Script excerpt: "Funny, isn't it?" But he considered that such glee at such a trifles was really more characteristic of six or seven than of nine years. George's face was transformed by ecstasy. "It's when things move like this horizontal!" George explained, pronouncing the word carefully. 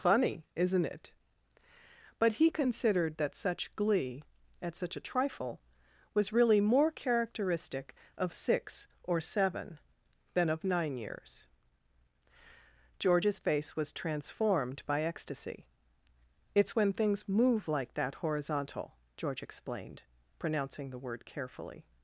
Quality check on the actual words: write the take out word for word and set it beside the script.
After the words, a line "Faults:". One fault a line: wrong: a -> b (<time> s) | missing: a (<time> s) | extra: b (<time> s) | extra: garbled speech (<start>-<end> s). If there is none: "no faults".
"Funny, isn't it?" But he considered that such glee at such a trifle was really more characteristic of six or seven than of nine years. George's face was transformed by ecstasy. "It's when things move like that horizontal!" George explained, pronouncing the word carefully.
Faults:
wrong: trifles -> trifle (5.1 s)
wrong: this -> that (17.9 s)